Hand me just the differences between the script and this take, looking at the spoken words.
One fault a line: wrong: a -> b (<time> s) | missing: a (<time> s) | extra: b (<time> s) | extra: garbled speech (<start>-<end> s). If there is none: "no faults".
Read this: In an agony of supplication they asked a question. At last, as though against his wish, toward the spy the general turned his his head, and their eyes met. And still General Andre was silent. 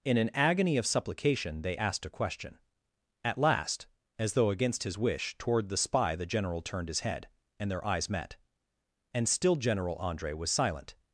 missing: his (7.0 s)